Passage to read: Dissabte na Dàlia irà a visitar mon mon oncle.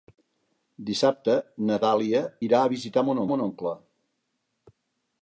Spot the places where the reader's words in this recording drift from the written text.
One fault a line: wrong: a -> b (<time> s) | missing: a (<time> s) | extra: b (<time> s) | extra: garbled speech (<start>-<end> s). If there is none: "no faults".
no faults